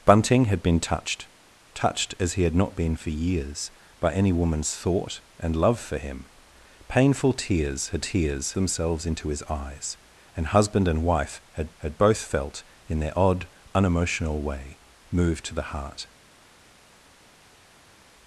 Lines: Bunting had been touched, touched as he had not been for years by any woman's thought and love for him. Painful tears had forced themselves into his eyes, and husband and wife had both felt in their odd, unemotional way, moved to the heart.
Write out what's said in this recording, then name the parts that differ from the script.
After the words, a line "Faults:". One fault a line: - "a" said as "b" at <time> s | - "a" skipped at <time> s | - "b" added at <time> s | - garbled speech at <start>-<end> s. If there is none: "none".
Bunting had been touched, touched as he had not been for years by any woman's thought and love for him. Painful tears had tears themselves into his eyes, and husband and wife had had both felt in their odd, unemotional way, moved to the heart.
Faults:
- "forced" said as "tears" at 8.0 s
- "had" added at 11.8 s